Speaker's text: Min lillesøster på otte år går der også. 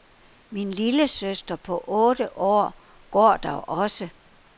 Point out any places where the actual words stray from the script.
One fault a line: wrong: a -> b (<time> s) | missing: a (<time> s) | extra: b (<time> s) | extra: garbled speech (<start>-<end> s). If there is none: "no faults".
no faults